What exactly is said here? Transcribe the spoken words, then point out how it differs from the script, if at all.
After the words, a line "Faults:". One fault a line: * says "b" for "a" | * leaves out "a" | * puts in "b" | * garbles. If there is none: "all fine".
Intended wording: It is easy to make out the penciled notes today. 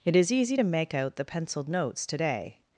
It is easy to make out the penciled notes today.
Faults:
all fine